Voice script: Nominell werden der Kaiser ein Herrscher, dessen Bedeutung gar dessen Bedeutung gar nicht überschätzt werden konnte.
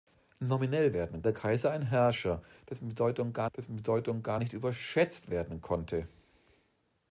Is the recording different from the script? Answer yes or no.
no